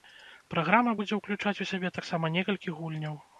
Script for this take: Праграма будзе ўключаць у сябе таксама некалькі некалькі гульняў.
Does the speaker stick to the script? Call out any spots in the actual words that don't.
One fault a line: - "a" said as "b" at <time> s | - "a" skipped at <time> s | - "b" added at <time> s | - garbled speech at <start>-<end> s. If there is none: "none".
- "некалькі" skipped at 2.8 s